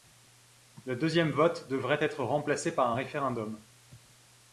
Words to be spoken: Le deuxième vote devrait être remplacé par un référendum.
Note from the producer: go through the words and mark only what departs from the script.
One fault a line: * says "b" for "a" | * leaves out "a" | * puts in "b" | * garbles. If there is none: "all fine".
all fine